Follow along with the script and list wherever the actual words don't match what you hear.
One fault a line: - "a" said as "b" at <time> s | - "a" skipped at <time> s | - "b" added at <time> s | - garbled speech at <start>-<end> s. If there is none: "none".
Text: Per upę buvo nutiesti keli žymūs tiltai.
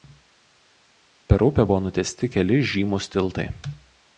none